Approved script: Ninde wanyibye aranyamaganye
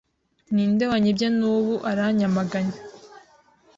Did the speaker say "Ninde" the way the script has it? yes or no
yes